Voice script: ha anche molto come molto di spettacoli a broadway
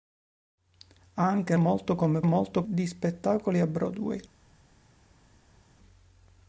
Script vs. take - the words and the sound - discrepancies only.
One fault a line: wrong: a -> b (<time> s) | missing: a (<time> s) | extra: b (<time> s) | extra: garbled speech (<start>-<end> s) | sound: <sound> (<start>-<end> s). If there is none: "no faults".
no faults